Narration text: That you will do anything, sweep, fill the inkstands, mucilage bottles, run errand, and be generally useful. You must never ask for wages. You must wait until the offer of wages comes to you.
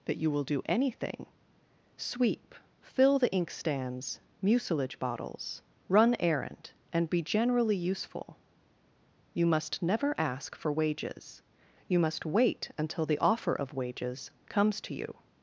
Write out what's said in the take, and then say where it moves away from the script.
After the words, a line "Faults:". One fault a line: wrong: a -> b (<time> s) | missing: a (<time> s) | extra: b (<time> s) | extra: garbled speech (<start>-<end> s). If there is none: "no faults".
That you will do anything, sweep, fill the inkstands, mucilage bottles, run errand, and be generally useful. You must never ask for wages. You must wait until the offer of wages comes to you.
Faults:
no faults